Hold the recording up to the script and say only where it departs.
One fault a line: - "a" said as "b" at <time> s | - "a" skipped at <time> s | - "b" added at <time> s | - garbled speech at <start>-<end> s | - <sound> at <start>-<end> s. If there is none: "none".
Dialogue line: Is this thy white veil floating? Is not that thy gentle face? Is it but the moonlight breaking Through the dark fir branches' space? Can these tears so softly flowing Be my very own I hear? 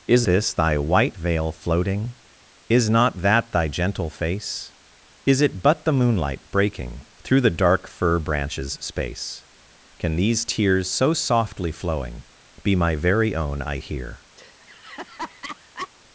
- laugh at 14.4-15.9 s